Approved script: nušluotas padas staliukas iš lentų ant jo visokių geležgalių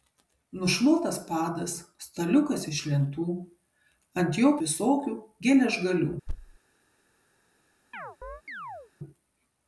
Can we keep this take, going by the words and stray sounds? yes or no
no